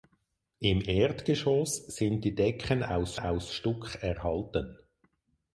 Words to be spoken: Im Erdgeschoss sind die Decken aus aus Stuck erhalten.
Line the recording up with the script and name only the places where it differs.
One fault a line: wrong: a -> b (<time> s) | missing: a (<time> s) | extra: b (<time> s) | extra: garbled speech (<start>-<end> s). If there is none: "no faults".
no faults